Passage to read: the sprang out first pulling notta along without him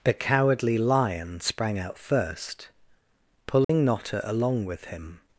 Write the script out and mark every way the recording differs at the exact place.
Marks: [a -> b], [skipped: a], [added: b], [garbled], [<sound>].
the [added: cowardly lion] sprang out first pulling [dropout] notta along [without -> with] him